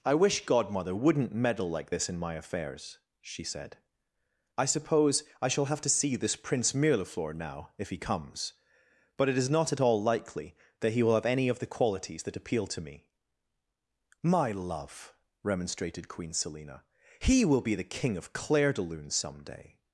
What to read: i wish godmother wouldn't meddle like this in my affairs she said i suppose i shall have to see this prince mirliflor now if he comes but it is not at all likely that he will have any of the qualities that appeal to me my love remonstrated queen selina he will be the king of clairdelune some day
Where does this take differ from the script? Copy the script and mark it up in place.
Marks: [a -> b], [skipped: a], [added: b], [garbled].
i wish godmother wouldn't meddle like this in my affairs she said i suppose i shall have to see this prince mirliflor now if he comes but it is not at all likely that he will have any of the qualities that appeal to me my love remonstrated queen selina he will be the king of clairdelune some day